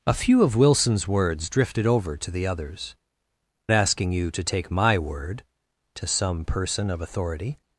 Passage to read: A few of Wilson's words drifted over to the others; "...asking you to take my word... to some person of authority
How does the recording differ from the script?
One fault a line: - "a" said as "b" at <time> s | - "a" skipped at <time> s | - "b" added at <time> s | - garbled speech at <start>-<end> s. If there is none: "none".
none